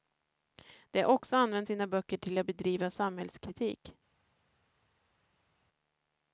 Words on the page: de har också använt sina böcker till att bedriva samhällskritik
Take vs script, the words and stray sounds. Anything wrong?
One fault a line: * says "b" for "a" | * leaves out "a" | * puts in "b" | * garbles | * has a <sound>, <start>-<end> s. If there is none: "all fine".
all fine